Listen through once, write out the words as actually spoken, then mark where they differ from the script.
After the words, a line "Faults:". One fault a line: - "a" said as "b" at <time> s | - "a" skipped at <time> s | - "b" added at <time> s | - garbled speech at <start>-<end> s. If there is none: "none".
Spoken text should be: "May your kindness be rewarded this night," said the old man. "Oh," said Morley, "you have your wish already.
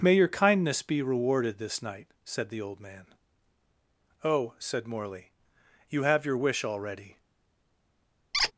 "May your kindness be rewarded this night," said the old man. "Oh," said Morley, "you have your wish already.
Faults:
none